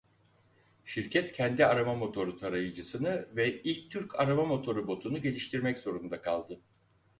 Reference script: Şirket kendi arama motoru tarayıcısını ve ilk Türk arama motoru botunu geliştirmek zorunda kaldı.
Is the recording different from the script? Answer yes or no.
no